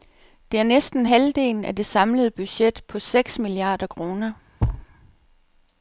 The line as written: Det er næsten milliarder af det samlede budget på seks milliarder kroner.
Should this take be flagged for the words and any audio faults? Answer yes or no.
yes